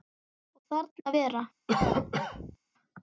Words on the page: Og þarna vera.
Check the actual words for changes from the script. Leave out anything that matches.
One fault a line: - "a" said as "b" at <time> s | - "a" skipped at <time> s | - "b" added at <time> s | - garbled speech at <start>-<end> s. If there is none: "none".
none